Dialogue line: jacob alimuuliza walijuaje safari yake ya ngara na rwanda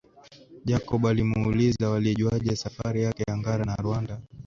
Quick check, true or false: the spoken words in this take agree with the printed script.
true